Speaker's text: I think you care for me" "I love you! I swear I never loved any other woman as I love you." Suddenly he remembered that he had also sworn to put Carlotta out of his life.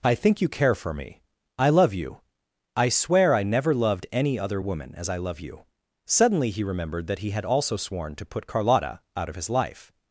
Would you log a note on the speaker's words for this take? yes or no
no